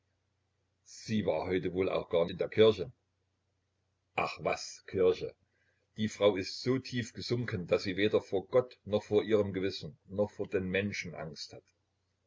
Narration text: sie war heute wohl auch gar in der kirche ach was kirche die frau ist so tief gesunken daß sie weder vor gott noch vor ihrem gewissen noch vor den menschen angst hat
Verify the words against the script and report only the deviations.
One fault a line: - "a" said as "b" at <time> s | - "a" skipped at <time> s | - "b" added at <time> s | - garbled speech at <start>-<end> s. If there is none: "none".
none